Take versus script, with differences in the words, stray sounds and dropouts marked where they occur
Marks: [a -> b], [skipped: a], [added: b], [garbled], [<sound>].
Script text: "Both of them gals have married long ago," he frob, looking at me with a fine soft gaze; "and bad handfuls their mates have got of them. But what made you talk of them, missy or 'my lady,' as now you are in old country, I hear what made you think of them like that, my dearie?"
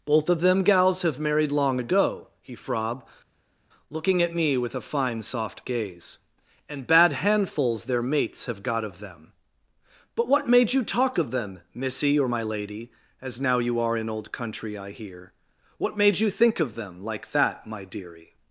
"Both of them gals have married long ago," he frob, looking at me with a fine soft gaze; "and bad handfuls their mates have got of them. But what made you talk of them, missy or 'my lady,' as now you are in old country, I hear what made you think of them like that, my dearie?"